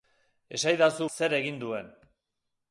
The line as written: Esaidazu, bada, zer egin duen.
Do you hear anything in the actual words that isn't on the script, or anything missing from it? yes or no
yes